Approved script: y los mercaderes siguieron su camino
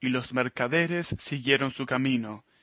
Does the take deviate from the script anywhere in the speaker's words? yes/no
no